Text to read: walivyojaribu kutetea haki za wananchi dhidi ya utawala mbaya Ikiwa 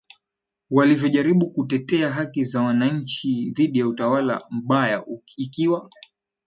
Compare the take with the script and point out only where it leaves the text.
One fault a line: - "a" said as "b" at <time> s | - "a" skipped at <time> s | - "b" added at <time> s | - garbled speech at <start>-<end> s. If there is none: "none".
none